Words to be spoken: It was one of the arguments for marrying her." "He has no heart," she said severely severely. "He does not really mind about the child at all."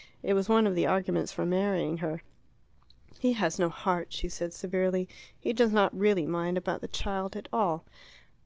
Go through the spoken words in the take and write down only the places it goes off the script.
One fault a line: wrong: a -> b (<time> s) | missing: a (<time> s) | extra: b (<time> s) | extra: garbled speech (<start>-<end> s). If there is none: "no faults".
missing: severely (5.1 s)